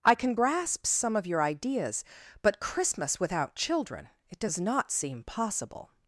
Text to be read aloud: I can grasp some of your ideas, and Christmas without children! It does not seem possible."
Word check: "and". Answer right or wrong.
wrong